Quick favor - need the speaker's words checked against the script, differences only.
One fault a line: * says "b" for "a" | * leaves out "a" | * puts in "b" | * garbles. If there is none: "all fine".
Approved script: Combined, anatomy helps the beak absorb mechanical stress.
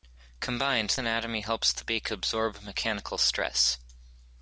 all fine